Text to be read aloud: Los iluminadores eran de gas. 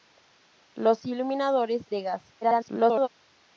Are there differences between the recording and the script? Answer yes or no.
yes